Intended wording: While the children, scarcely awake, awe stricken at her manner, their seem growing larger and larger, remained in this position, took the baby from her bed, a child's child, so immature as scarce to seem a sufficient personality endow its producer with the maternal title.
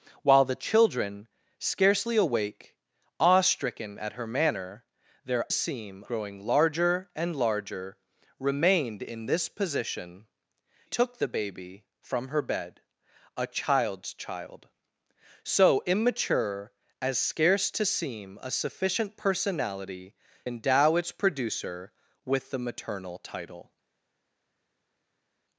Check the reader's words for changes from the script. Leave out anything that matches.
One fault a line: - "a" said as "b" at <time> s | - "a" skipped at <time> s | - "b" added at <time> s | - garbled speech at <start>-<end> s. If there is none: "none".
none